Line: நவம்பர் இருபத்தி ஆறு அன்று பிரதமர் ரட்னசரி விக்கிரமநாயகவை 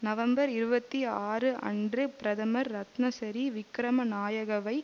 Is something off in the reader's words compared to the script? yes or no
no